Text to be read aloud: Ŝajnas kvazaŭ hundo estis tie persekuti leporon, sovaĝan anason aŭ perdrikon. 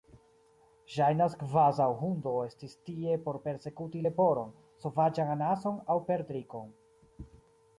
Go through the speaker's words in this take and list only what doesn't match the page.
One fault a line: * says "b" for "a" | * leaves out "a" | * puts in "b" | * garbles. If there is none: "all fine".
* puts in "por"